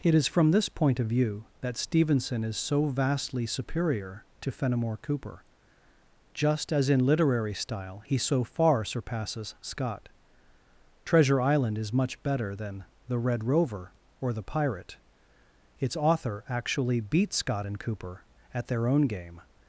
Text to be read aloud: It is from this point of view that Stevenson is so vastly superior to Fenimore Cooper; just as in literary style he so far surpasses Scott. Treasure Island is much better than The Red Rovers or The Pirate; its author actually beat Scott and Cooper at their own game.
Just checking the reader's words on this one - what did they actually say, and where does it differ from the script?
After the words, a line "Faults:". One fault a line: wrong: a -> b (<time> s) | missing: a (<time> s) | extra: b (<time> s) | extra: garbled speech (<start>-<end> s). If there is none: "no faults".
It is from this point of view that Stevenson is so vastly superior to Fenimore Cooper; just as in literary style he so far surpasses Scott. Treasure Island is much better than The Red Rover or The Pirate; its author actually beat Scott and Cooper at their own game.
Faults:
wrong: Rovers -> Rover (13.4 s)